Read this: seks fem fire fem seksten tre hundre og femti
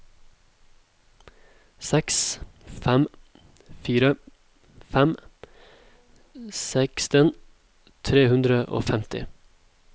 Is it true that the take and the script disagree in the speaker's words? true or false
false